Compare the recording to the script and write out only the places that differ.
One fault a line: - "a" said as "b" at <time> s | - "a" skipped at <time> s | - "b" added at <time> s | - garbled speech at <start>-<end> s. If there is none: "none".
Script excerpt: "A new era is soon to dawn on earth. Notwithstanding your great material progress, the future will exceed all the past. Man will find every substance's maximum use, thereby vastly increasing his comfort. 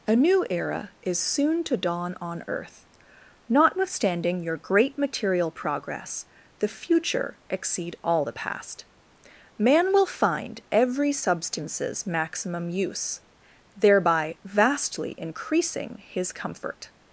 - "will" skipped at 7.4 s